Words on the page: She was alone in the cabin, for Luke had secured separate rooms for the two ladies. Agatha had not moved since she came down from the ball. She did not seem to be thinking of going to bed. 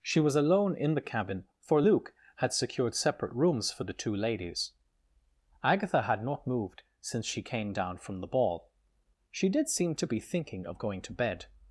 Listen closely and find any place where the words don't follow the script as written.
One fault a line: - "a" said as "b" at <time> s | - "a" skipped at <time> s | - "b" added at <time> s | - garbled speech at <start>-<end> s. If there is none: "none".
- "not" skipped at 9.7 s